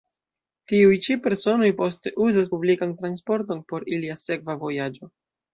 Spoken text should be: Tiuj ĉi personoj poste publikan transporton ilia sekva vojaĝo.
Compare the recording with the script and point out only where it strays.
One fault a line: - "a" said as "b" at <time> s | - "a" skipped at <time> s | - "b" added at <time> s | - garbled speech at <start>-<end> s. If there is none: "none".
- "uzas" added at 2.3 s
- "por" added at 3.7 s